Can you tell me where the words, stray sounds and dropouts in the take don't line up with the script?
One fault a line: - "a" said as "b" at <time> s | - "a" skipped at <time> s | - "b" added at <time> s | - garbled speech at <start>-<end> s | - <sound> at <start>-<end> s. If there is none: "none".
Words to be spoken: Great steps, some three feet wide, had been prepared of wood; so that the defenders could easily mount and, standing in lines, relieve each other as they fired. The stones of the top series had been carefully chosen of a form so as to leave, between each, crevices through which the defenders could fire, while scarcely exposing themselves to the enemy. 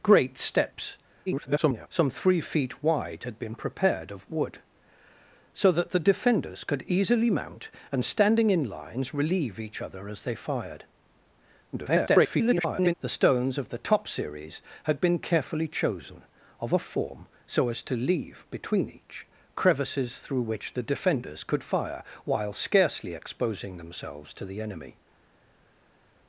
- garbled speech at 1.3-1.9 s
- garbled speech at 11.7-12.9 s